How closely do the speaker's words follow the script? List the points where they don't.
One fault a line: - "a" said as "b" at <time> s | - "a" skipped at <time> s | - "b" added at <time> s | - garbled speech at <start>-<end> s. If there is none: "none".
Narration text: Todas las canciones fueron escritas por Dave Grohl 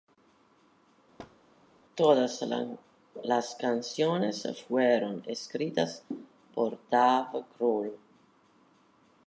none